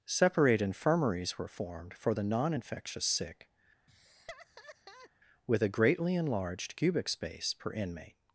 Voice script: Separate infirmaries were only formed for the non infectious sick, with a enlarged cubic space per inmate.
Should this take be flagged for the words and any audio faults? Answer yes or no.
yes